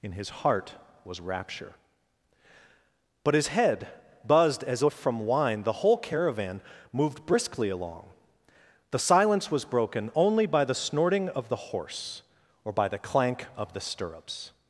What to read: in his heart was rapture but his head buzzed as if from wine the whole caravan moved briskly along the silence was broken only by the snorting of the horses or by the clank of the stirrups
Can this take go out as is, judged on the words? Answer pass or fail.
fail